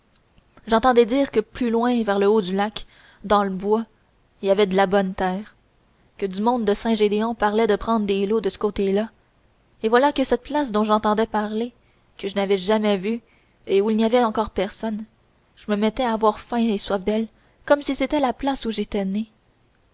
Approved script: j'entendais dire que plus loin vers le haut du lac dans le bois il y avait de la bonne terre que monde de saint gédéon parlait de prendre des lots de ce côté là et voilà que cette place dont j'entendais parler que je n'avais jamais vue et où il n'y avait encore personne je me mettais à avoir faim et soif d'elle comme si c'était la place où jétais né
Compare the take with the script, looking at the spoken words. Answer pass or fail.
fail